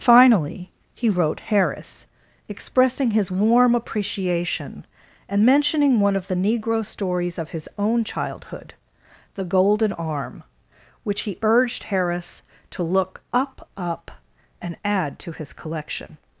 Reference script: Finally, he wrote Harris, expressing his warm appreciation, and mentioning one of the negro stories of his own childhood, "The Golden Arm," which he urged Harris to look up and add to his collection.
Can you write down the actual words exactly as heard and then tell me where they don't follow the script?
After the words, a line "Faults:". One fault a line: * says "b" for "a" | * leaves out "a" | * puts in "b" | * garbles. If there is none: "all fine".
Finally, he wrote Harris, expressing his warm appreciation, and mentioning one of the negro stories of his own childhood, "The Golden Arm," which he urged Harris to look up up and add to his collection.
Faults:
* puts in "up"